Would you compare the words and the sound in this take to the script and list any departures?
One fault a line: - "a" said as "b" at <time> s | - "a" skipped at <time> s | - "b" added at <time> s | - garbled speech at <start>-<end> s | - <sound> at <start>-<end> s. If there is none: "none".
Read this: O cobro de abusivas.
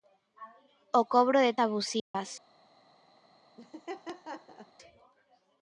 - dropout at 2.0-2.1 s
- laugh at 3.6-4.7 s